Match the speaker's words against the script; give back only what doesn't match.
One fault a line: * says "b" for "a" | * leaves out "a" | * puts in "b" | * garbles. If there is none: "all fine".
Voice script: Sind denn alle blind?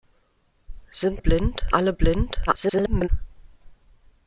* says "blind" for "denn"
* garbles